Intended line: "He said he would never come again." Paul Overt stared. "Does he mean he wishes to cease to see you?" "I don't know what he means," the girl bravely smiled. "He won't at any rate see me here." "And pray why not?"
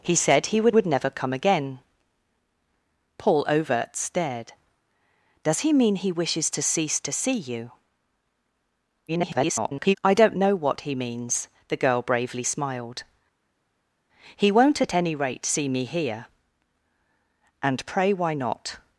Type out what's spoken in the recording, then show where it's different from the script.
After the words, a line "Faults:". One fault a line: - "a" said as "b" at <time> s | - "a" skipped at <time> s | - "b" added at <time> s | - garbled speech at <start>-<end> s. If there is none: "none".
"He said he would would never come again." Paul Overt stared. "Does he mean he wishes to cease to see you?" [garbled] "I don't know what he means," the girl bravely smiled. "He won't at any rate see me here." "And pray why not?"
Faults:
- "would" added at 0.7 s
- garbled speech at 9.1-10.0 s